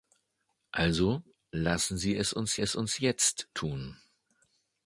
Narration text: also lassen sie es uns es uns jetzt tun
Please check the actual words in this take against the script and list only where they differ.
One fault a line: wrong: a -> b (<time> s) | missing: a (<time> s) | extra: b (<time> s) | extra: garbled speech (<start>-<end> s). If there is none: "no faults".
no faults